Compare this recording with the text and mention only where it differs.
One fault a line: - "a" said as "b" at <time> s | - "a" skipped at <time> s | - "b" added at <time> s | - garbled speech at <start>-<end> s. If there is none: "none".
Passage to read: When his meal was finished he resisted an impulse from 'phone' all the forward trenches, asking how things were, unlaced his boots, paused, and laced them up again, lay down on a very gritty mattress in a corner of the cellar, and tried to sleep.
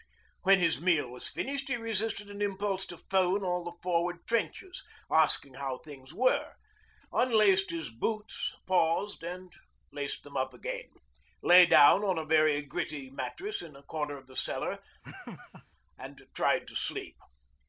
- "from" said as "to" at 2.9 s